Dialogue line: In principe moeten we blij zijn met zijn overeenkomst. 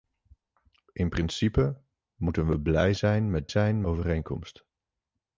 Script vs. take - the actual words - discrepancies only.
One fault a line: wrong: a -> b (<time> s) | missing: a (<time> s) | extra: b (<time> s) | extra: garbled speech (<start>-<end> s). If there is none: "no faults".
no faults